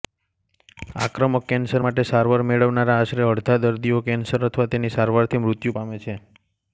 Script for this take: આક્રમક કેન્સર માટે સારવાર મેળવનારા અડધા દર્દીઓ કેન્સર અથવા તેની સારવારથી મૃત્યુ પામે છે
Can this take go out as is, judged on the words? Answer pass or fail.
fail